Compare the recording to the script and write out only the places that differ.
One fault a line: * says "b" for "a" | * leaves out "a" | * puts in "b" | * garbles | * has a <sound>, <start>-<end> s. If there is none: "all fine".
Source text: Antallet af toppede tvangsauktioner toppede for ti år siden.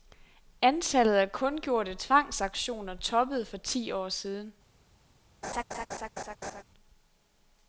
* says "kundgjorte" for "toppede"
* has a laugh, 5.4-6.6 s